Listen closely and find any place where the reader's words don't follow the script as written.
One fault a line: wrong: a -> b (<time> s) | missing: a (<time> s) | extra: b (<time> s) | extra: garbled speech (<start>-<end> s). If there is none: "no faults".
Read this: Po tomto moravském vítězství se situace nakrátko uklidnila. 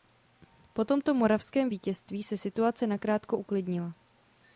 no faults